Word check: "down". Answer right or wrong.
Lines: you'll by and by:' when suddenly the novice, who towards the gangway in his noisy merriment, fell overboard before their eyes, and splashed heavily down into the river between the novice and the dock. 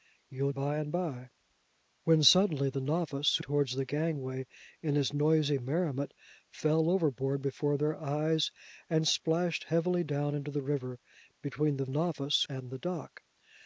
right